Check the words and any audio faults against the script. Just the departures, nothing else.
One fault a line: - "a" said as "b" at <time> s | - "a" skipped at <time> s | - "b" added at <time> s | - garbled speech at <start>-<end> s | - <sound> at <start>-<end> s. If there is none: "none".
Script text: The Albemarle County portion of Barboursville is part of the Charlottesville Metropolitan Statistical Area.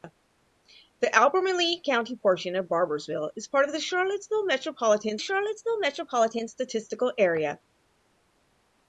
- "Charlottesville Metropolitan" added at 5.2 s